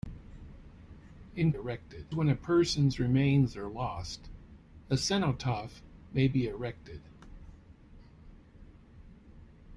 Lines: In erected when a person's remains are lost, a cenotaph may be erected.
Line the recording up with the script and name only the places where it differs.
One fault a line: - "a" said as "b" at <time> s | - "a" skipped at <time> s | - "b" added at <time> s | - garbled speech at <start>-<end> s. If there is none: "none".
none